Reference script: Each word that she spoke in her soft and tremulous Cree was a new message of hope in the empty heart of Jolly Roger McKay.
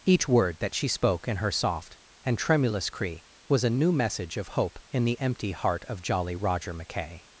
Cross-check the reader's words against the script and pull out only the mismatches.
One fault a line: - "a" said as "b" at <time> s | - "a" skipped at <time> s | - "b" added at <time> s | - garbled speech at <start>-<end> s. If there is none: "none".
none